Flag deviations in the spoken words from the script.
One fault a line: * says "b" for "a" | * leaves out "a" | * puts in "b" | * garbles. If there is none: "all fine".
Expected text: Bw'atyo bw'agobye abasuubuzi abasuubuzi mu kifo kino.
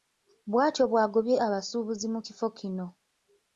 * leaves out "abasuubuzi"